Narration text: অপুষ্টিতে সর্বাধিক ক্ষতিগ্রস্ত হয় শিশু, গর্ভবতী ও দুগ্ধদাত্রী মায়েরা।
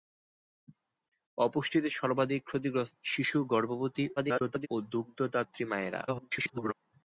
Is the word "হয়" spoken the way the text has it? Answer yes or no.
no